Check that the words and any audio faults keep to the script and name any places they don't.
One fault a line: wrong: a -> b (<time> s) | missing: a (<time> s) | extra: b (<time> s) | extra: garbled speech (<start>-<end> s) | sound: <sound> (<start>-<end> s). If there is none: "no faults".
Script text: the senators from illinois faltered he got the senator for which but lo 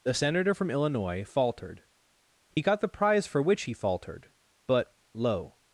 wrong: senators -> senator (0.1 s)
sound: dropout (2.5-2.6 s)
wrong: senator -> prize (2.9 s)
extra: he faltered (3.6 s)